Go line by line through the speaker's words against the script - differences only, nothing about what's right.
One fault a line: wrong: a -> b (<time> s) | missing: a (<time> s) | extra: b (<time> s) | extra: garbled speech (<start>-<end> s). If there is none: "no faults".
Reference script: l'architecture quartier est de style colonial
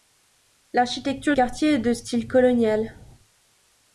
no faults